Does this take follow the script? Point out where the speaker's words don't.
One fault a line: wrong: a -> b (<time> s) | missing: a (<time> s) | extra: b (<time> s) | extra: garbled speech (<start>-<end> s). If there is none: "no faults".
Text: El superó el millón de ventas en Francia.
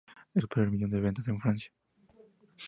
no faults